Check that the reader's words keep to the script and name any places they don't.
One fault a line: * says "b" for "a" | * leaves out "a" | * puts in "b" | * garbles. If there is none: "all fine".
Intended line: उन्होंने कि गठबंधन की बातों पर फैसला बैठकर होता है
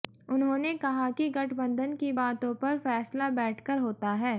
* puts in "कहा"